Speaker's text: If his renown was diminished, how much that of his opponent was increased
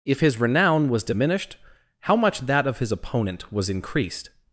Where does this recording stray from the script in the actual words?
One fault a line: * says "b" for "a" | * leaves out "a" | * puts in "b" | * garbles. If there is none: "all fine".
all fine